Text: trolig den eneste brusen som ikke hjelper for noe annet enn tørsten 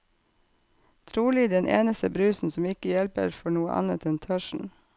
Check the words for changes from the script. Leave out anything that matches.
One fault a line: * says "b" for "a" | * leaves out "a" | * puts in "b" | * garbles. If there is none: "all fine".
all fine